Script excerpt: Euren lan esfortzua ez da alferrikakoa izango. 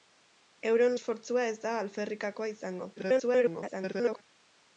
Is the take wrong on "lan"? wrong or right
wrong